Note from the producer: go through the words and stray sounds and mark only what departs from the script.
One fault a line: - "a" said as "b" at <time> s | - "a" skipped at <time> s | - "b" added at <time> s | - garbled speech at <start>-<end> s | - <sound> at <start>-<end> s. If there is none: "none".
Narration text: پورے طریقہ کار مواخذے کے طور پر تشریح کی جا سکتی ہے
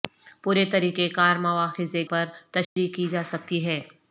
- "کے طور" skipped at 2.0 s
- dropout at 2.6-2.8 s